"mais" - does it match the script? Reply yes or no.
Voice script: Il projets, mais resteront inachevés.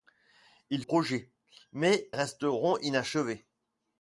yes